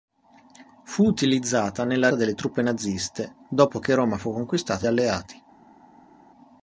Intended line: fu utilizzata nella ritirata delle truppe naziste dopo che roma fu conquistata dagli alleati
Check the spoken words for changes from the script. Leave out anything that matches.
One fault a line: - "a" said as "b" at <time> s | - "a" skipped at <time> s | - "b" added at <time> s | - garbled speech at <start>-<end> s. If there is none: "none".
- "ritirata" skipped at 2.1 s
- "dagli" skipped at 4.9 s